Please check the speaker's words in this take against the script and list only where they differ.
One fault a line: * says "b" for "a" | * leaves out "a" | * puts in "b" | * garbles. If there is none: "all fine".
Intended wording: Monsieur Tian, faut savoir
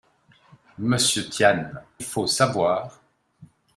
all fine